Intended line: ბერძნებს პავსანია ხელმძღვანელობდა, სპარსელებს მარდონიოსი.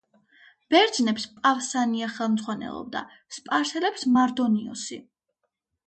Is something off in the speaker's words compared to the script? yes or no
no